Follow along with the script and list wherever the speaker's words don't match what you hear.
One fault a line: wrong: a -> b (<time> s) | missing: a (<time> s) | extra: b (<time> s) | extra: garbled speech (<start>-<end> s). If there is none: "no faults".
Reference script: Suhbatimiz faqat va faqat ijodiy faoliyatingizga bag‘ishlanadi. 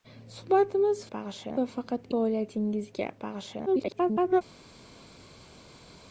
wrong: faqat -> bag‘ishlanadi (1.2 s)
missing: ijodiy (2.1 s)
extra: garbled speech (3.7-4.4 s)